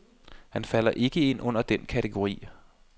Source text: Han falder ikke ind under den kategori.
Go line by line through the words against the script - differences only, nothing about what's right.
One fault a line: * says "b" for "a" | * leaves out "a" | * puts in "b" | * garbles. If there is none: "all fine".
all fine